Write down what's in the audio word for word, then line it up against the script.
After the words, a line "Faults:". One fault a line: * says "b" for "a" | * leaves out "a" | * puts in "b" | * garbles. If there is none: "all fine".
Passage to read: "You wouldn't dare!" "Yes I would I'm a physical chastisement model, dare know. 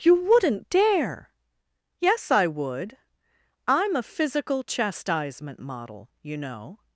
"You wouldn't dare!" "Yes I would I'm a physical chastisement model, you know.
Faults:
* says "you" for "dare"